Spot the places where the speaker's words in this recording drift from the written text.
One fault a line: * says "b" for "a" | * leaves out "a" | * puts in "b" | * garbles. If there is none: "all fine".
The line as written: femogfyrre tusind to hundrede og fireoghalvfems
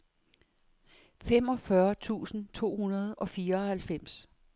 all fine